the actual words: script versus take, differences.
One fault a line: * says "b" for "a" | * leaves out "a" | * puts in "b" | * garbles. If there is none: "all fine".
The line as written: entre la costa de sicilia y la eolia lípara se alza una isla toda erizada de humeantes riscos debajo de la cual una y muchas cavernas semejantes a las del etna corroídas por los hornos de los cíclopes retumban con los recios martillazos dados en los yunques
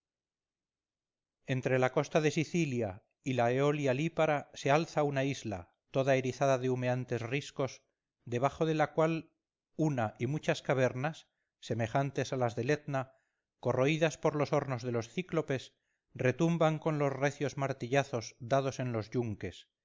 all fine